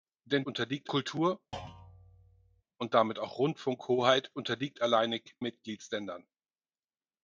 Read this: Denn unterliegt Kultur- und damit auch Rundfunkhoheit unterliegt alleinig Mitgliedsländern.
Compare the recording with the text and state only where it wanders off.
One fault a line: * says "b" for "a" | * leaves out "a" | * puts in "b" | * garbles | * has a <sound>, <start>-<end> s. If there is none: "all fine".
* has a thud, 1.5-2.6 s